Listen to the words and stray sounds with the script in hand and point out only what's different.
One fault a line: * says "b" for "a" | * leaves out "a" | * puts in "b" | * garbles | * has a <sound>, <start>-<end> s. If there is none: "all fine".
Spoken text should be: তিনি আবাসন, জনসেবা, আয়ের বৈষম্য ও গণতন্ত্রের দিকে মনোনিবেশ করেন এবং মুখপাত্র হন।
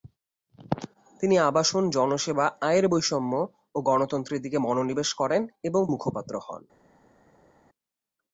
all fine